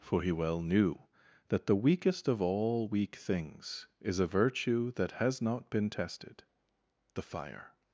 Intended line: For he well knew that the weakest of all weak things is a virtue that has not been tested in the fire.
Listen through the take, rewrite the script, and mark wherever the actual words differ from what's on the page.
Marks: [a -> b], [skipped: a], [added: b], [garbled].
For he well knew that the weakest of all weak things is a virtue that has not been tested [skipped: in] the fire.